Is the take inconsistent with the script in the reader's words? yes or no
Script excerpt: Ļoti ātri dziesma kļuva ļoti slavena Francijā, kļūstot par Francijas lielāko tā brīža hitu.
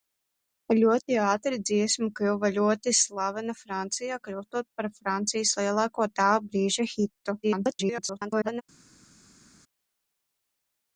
yes